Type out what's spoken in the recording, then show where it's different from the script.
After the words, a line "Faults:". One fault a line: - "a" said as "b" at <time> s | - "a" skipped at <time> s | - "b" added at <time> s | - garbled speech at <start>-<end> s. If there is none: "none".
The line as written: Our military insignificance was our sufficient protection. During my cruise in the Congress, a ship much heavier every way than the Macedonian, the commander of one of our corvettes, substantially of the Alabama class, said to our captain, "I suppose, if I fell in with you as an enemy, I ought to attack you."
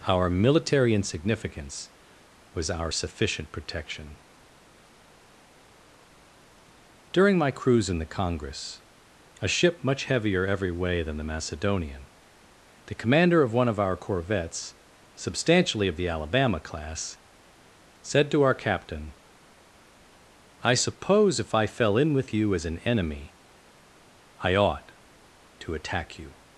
Our military insignificance was our sufficient protection. During my cruise in the Congress, a ship much heavier every way than the Macedonian, the commander of one of our corvettes, substantially of the Alabama class, said to our captain, "I suppose, if I fell in with you as an enemy, I ought to attack you."
Faults:
none